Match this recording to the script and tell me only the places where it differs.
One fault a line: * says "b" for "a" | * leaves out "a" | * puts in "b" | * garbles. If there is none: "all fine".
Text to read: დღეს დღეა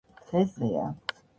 all fine